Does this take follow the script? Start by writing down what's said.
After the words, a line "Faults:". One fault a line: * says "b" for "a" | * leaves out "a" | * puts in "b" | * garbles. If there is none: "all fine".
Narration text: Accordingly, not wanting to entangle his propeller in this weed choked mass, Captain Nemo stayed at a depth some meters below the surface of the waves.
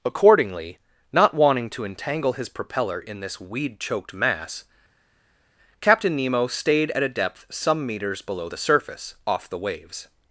Accordingly, not wanting to entangle his propeller in this weed choked mass, Captain Nemo stayed at a depth some meters below the surface off the waves.
Faults:
* says "off" for "of"